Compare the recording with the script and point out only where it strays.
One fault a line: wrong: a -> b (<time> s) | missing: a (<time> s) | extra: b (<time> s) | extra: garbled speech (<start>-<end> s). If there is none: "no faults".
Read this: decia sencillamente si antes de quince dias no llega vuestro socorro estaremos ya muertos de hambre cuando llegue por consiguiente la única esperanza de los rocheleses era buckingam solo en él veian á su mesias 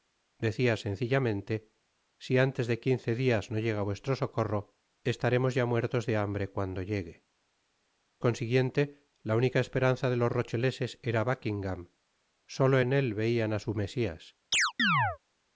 missing: por (7.2 s)